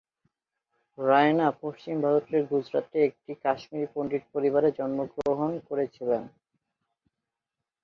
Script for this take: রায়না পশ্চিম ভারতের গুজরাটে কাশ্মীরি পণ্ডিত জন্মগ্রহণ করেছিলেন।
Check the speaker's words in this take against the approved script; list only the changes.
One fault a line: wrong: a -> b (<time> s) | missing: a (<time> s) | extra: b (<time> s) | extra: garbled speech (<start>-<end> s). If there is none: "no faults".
extra: একটি (3.1 s)
extra: পরিবারে (4.3 s)